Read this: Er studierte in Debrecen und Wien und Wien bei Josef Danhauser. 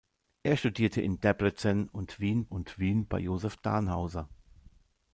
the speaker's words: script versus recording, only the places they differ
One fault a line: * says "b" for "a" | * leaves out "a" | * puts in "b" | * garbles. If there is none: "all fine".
all fine